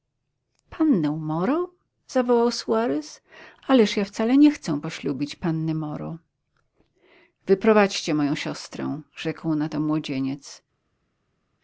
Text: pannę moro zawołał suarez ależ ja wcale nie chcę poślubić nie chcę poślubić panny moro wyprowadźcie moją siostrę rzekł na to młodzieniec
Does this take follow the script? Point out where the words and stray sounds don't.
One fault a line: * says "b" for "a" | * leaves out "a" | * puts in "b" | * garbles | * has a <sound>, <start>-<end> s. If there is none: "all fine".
* leaves out "nie chcę poślubić"